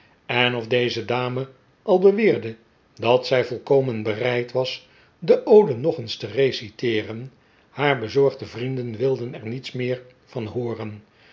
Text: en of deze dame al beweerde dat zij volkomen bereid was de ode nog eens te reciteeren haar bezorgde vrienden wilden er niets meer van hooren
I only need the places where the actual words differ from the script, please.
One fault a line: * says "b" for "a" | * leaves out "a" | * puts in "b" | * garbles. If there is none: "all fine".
all fine